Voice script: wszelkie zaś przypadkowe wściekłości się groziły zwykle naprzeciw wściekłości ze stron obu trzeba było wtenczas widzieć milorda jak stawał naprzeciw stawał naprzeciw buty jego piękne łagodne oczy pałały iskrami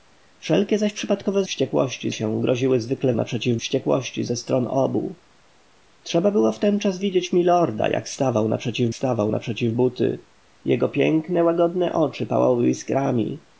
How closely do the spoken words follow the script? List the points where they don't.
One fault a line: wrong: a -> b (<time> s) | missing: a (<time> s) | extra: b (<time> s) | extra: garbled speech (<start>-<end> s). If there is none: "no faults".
no faults